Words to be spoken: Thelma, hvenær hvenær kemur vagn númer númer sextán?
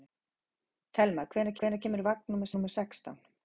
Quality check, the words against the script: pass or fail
pass